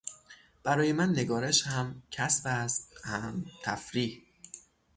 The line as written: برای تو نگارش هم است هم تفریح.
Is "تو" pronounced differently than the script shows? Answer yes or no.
yes